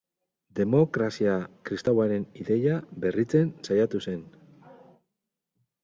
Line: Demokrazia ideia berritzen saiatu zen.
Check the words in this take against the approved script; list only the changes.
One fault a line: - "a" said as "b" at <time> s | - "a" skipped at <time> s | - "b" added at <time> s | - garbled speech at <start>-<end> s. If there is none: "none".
- "kristauaren" added at 1.7 s